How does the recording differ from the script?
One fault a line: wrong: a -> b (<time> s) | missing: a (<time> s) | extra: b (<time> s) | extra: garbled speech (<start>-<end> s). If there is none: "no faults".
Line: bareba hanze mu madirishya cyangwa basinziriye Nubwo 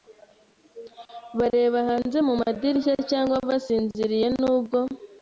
no faults